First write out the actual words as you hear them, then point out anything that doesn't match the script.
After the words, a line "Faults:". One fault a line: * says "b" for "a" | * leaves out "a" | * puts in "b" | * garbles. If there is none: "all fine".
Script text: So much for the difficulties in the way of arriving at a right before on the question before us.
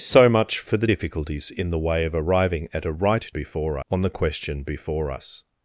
So much for the difficulties in the way of arriving at a right before on the question before us.
Faults:
all fine